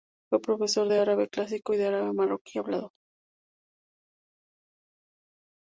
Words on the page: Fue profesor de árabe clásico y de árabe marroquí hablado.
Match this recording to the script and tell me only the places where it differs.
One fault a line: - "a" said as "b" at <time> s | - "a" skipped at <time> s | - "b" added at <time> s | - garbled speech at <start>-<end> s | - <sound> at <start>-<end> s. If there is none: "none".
none